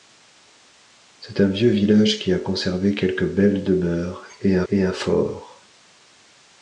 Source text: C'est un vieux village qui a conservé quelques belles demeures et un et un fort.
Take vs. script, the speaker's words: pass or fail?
pass